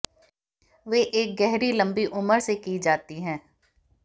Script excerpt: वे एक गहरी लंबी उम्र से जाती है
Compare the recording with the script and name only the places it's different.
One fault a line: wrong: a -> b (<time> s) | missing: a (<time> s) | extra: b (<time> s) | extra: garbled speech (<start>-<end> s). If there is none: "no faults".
extra: की (2.6 s)